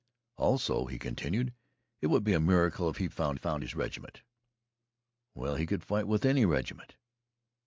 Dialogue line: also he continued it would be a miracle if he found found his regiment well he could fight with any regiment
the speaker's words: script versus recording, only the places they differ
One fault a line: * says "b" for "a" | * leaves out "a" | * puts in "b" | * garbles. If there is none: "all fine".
all fine